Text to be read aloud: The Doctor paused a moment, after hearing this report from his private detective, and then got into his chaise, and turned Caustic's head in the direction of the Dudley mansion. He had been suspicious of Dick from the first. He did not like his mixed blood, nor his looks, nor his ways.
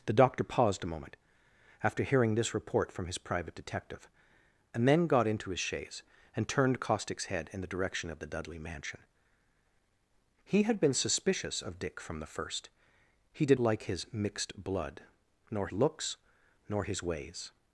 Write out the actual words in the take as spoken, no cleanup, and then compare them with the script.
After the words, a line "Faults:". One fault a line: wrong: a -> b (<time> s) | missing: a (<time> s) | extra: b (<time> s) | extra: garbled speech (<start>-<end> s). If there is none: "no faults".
The Doctor paused a moment, after hearing this report from his private detective, and then got into his chaise, and turned Caustic's head in the direction of the Dudley mansion. He had been suspicious of Dick from the first. He did like his mixed blood, nor looks, nor his ways.
Faults:
missing: not (13.6 s)
missing: his (15.7 s)